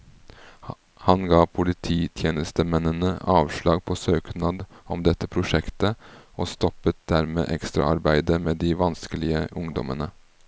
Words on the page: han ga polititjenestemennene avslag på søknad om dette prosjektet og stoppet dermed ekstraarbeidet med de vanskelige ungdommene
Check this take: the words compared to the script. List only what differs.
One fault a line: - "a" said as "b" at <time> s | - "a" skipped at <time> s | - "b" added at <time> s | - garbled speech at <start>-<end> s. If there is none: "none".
none